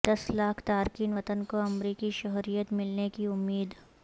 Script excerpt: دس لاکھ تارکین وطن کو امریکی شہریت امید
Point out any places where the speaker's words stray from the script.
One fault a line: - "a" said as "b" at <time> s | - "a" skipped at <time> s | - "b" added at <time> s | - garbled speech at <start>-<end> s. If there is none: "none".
- "ملنے کی" added at 2.7 s